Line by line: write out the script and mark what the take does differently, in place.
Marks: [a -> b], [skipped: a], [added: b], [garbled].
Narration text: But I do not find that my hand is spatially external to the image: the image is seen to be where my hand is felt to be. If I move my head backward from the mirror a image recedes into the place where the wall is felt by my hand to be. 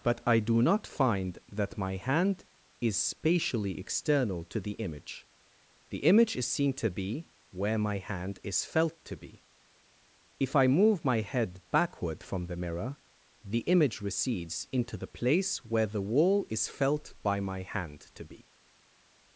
But I do not find that my hand is spatially external to the image: the image is seen to be where my hand is felt to be. If I move my head backward from the mirror [a -> the] image recedes into the place where the wall is felt by my hand to be.